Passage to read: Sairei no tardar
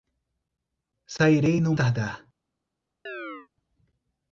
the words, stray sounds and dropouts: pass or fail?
fail